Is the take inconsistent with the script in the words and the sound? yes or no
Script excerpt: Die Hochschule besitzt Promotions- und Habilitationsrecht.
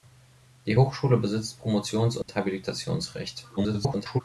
yes